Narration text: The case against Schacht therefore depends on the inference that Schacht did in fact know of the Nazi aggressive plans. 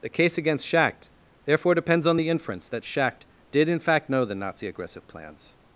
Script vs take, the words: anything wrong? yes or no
yes